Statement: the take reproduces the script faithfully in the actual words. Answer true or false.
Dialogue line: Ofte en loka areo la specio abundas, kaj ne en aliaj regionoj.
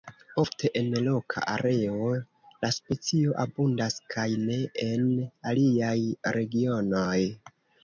true